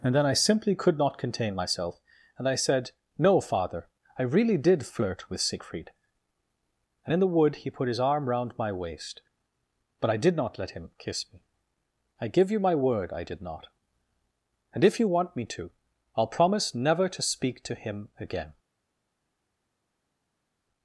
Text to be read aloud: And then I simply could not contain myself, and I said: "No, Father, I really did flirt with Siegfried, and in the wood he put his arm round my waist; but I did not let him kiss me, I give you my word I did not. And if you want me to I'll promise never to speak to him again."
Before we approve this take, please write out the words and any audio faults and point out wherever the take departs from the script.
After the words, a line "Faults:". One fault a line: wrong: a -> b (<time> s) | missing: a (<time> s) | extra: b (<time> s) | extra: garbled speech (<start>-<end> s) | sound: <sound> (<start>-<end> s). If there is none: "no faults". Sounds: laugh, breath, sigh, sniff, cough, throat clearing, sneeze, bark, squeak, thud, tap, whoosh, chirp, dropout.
And then I simply could not contain myself, and I said: "No, Father, I really did flirt with Siegfried, and in the wood he put his arm round my waist; but I did not let him kiss me, I give you my word I did not. And if you want me to I'll promise never to speak to him again."
Faults:
no faults